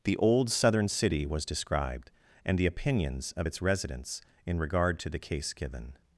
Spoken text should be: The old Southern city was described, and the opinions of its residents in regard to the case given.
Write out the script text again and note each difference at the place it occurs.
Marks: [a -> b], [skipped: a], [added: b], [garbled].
The old Southern city was described, and the opinions of its residents in regard to the case given.